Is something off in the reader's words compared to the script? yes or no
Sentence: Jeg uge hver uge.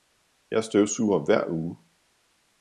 yes